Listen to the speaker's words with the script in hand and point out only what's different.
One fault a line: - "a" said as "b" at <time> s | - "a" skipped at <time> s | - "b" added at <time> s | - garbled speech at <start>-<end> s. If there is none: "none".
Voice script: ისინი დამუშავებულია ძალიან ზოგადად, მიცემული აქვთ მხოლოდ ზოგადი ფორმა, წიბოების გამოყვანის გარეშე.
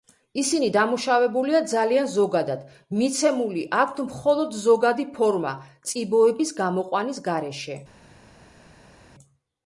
none